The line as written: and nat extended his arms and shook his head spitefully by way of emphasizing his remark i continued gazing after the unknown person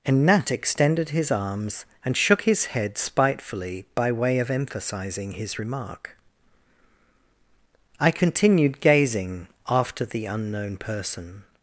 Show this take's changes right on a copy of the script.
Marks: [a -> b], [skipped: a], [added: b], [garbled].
and nat extended his arms and shook his head spitefully by way of emphasizing his remark i continued gazing after the unknown person